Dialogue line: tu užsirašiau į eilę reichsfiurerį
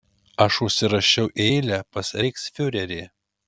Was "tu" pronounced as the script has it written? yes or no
no